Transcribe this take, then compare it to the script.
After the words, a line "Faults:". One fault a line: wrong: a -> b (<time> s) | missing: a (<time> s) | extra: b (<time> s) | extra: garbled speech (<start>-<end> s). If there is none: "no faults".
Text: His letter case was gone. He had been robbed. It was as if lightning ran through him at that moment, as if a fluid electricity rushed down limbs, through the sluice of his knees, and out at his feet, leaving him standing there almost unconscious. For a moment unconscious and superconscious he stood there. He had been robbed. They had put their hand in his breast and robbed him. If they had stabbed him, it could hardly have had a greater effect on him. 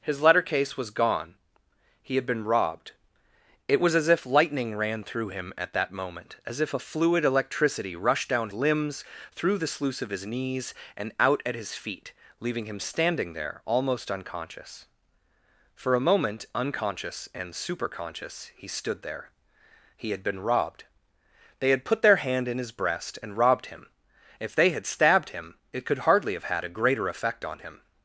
His letter case was gone. He had been robbed. It was as if lightning ran through him at that moment, as if a fluid electricity rushed down limbs, through the sluice of his knees, and out at his feet, leaving him standing there almost unconscious. For a moment unconscious and superconscious he stood there. He had been robbed. They had put their hand in his breast and robbed him. If they had stabbed him, it could hardly have had a greater effect on him.
Faults:
no faults